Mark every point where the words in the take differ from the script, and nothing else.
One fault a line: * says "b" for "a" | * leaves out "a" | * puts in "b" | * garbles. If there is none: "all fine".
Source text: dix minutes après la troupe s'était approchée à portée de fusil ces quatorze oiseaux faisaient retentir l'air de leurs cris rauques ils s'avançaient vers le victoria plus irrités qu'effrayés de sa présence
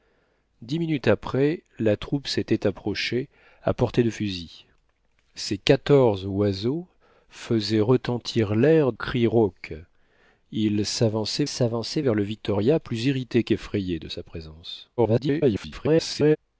* leaves out "de leurs"
* puts in "s'avançaient"
* garbles